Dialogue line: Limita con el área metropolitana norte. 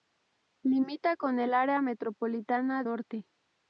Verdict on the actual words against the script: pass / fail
pass